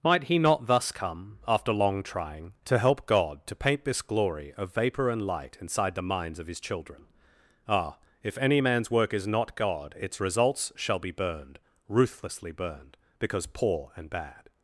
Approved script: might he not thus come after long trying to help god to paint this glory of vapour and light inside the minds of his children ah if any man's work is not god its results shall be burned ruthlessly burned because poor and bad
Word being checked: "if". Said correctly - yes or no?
yes